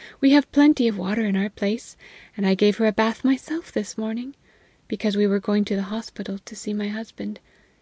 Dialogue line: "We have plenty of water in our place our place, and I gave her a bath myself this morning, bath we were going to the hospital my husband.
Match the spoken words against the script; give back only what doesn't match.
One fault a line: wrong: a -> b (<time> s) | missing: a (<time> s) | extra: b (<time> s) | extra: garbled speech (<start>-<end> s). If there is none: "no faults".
missing: our place (1.9 s)
wrong: bath -> because (4.9 s)
extra: to see (6.4 s)